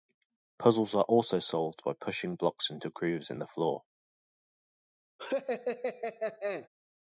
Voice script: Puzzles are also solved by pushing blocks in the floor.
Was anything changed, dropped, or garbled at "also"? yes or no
no